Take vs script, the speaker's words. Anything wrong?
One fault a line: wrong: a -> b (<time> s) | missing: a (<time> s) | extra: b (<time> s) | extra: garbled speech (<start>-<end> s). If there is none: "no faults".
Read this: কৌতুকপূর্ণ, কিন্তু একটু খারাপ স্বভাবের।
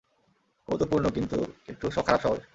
no faults